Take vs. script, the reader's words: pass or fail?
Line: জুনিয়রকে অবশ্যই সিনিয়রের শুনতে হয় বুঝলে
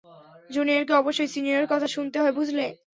fail